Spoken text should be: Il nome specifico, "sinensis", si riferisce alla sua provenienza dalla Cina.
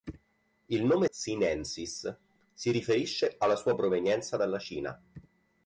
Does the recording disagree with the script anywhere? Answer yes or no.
yes